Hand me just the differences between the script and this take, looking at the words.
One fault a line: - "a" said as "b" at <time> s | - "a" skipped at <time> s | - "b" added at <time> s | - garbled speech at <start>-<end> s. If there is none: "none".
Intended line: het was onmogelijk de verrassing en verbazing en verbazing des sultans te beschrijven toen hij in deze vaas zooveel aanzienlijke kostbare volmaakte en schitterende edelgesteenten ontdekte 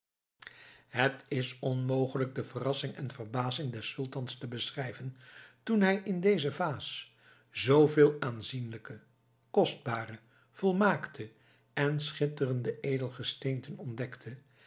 - "was" said as "is" at 1.3 s
- "en verbazing" skipped at 3.7 s